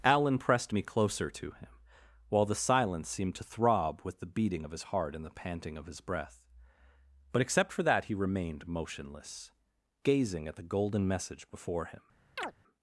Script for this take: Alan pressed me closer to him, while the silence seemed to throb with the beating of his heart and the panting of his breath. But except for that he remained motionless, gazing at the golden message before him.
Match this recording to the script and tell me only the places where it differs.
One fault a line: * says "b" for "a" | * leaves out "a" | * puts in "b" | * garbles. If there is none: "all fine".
all fine